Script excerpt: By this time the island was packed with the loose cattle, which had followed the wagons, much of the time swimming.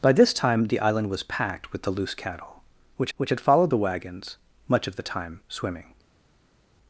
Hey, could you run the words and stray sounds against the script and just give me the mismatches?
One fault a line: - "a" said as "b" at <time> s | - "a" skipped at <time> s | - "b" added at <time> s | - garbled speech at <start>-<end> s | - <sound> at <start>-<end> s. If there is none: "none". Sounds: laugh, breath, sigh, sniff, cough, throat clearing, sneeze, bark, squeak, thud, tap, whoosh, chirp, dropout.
- "which" added at 3.2 s